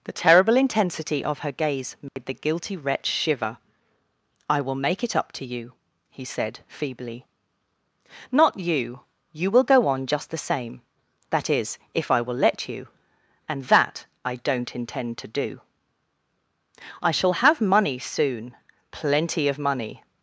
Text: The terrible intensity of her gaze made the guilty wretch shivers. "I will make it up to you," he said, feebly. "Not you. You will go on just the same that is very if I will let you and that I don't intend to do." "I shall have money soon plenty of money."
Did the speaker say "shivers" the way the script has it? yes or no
no